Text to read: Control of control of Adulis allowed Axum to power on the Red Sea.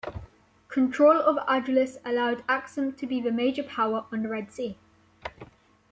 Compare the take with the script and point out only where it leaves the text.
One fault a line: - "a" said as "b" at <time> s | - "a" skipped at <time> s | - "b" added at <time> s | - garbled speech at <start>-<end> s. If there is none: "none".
- "control of" skipped at 1.4 s
- "be the major" added at 3.0 s